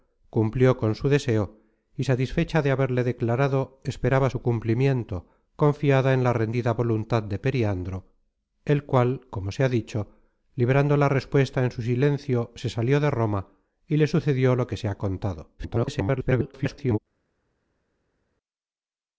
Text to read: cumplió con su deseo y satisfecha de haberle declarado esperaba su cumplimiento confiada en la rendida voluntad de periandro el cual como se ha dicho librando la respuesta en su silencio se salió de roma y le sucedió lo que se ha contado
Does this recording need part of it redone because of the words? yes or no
yes